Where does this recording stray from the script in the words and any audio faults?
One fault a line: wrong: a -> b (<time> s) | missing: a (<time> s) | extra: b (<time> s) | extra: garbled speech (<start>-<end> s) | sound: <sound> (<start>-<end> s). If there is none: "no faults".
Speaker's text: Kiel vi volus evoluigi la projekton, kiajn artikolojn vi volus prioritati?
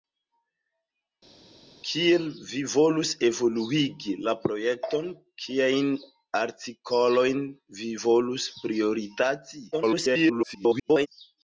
extra: garbled speech (9.7-11.1 s)